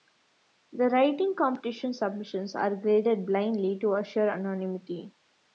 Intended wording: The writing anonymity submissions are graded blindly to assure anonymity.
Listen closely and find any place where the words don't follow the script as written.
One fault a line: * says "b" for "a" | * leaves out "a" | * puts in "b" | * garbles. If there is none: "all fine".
* says "competition" for "anonymity"